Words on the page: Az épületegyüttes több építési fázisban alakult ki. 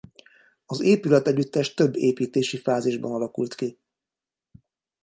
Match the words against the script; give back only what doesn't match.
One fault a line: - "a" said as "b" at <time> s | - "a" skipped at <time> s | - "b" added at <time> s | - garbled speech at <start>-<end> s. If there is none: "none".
none